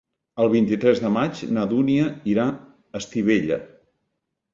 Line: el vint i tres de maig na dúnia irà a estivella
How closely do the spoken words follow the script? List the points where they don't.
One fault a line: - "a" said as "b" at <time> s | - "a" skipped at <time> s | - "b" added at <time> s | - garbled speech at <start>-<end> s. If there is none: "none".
none